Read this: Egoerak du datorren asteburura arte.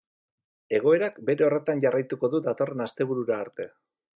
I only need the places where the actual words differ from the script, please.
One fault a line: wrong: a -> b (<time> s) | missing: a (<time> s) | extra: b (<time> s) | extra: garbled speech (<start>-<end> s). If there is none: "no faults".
extra: bere horretan jarraituko (1.3 s)